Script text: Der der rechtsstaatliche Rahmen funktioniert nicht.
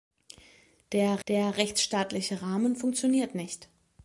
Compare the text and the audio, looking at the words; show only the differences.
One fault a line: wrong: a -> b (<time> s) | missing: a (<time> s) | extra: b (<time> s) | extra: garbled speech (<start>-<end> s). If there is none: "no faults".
no faults